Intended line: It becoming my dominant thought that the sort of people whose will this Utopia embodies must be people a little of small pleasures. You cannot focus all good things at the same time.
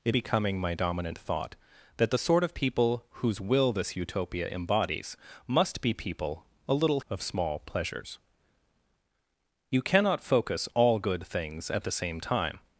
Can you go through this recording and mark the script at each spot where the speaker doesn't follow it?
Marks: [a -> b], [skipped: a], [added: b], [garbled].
It becoming my dominant thought that the sort of people whose will this Utopia embodies must be people a little of small pleasures. You cannot focus all good things at the same time.